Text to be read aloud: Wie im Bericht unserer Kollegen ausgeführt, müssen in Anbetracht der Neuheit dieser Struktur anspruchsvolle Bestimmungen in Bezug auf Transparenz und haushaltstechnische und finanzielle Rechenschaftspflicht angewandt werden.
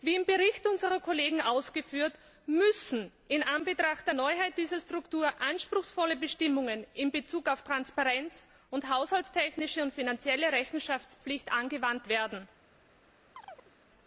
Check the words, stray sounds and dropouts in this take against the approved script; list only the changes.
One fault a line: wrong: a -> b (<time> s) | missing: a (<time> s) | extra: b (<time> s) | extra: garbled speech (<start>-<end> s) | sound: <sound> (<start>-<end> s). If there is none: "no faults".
sound: chirp (13.3-13.7 s)